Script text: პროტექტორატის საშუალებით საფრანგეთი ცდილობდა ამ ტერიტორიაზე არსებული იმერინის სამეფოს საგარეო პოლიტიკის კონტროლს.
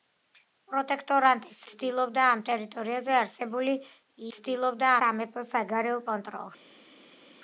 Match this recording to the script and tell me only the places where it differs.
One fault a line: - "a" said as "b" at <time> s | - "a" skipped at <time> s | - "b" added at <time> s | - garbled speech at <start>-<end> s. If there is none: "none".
- "საშუალებით საფრანგეთი" skipped at 1.6 s
- "იმერინის" said as "ცდილობდა" at 4.4 s
- "პოლიტიკის" skipped at 6.1 s